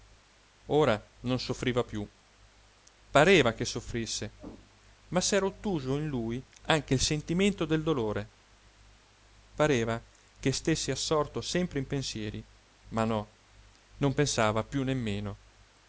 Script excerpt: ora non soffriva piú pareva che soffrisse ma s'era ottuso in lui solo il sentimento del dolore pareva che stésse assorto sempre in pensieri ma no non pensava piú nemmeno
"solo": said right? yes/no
no